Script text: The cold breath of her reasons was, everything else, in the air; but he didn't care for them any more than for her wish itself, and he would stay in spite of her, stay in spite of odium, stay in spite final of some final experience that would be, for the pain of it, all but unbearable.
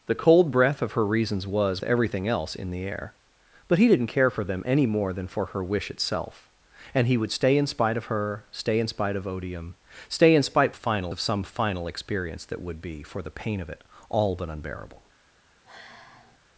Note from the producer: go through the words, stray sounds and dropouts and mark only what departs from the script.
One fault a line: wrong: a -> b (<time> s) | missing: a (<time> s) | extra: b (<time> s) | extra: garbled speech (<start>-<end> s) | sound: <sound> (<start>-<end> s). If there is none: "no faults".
sound: sigh (15.7-16.4 s)